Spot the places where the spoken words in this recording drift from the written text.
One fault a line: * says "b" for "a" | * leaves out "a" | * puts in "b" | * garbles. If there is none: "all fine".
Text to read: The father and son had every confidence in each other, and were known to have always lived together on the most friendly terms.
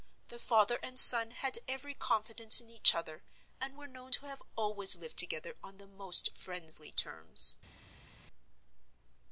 all fine